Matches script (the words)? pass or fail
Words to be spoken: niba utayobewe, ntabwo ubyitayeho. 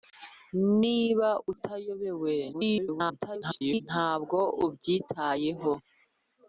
fail